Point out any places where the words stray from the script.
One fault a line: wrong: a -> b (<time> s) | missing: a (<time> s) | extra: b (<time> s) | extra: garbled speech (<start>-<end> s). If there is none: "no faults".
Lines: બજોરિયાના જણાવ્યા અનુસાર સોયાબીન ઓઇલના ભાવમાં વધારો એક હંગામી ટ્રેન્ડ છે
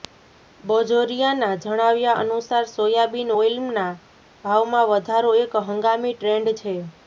no faults